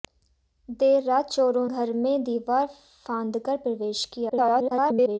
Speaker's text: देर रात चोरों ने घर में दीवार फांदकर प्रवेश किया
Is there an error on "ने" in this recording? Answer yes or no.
yes